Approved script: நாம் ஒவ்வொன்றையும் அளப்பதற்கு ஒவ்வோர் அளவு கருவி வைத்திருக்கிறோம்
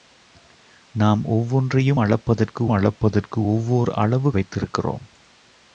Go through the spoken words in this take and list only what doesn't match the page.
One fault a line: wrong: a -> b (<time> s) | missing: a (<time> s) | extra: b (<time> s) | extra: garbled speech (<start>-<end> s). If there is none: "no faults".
extra: அளப்பதற்கு (2.7 s)
missing: கருவி (4.3 s)